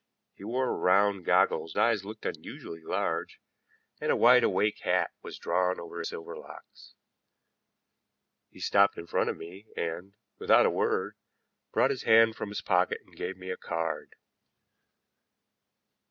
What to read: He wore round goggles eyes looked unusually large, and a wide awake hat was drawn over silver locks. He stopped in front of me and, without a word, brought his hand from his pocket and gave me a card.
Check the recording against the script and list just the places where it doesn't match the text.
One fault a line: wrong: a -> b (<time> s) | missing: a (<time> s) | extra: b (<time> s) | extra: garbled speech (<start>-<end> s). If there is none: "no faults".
no faults